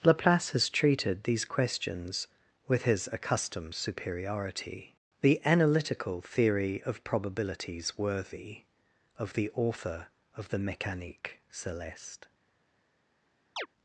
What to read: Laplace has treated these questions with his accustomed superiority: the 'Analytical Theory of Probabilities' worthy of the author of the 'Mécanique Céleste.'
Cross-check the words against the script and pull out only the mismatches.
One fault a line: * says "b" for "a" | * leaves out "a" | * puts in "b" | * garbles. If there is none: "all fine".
all fine